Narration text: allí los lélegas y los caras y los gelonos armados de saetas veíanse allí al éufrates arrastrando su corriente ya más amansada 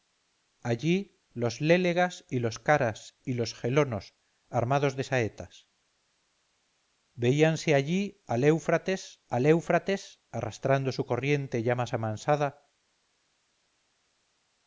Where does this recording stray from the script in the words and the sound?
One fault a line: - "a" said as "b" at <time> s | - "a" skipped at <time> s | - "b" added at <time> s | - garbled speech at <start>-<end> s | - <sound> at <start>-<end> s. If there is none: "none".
- "al éufrates" added at 9.3 s